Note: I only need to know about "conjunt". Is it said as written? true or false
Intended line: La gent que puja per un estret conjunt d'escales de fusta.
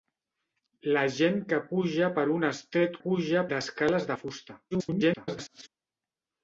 false